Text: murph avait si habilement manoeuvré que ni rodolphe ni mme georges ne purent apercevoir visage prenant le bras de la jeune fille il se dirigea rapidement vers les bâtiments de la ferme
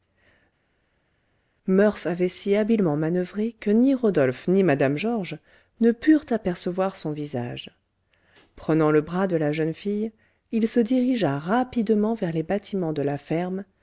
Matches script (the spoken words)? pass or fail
fail